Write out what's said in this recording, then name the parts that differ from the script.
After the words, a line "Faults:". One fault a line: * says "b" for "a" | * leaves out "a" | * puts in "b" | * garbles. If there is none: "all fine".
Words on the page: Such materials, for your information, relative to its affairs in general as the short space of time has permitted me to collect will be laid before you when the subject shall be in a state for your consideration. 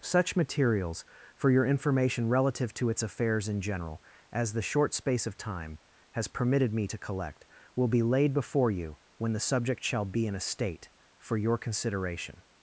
Such materials, for your information, relative to its affairs in general as the short space of time has permitted me to collect will be laid before you when the subject shall be in a state for your consideration.
Faults:
all fine